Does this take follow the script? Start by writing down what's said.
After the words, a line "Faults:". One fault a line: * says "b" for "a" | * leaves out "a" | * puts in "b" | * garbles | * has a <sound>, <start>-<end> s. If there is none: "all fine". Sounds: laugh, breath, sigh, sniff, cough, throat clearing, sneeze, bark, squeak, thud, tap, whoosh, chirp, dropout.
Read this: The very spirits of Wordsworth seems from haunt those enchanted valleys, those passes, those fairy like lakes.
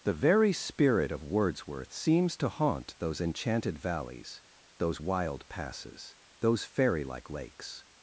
The very spirit of Wordsworth seems to haunt those enchanted valleys, those wild passes, those fairy like lakes.
Faults:
* says "spirit" for "spirits"
* says "to" for "from"
* puts in "wild"